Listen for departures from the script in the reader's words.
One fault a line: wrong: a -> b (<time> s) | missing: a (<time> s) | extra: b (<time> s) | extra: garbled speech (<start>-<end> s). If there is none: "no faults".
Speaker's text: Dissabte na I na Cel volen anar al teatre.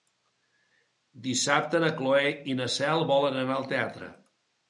extra: Cloè (2.0 s)